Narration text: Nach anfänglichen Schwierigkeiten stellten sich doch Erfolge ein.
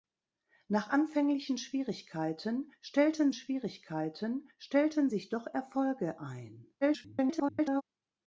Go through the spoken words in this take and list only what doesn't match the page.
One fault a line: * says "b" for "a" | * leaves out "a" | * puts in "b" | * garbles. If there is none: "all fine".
* puts in "Schwierigkeiten stellten"
* garbles